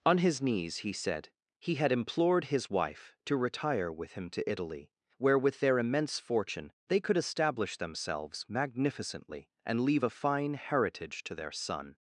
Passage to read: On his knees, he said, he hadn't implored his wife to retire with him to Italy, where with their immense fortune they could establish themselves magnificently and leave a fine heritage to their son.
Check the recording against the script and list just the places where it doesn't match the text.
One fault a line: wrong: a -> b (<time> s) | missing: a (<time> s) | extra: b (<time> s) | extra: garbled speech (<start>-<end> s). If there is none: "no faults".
wrong: hadn't -> had (1.8 s)